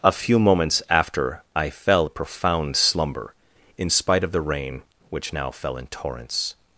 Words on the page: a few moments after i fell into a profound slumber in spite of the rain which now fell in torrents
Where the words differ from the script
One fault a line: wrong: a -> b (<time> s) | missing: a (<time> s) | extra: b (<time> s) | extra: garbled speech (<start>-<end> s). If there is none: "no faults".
missing: into (2.1 s)